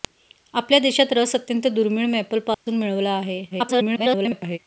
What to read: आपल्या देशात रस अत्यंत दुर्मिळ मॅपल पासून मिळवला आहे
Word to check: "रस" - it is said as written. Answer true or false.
true